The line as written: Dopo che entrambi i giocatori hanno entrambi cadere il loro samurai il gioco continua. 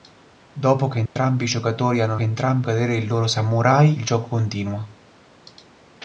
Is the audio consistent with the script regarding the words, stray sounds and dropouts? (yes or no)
no